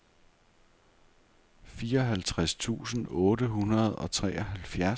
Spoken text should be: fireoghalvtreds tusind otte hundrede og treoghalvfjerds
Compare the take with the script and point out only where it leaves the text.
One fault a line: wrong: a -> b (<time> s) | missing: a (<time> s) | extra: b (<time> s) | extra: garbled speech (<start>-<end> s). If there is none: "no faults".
no faults